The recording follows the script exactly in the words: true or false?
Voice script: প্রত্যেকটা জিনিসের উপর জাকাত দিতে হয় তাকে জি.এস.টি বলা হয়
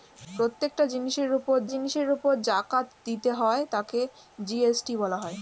false